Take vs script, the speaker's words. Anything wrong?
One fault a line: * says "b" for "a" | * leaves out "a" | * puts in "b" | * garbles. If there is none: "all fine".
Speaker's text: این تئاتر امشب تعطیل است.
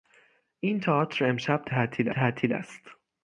* puts in "تعطیل"